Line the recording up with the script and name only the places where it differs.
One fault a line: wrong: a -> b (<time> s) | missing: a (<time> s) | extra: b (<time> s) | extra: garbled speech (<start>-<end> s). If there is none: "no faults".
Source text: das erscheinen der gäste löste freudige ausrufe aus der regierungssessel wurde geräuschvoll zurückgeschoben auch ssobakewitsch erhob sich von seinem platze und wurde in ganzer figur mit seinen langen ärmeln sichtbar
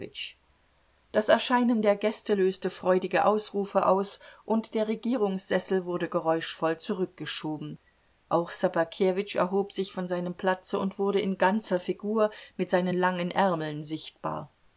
extra: und (4.4 s)